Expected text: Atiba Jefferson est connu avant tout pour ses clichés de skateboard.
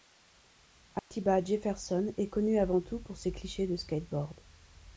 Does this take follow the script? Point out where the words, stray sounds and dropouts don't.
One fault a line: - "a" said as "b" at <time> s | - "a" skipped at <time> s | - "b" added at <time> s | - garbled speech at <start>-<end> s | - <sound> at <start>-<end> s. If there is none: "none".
- dropout at 1.0-1.1 s